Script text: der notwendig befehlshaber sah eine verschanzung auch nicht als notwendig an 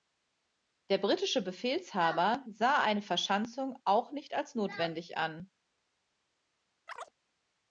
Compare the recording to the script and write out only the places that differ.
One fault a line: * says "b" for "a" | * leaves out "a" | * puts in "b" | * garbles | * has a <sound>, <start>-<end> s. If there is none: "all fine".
* says "britische" for "notwendig"
* has a chirp, 6.9-7.1 s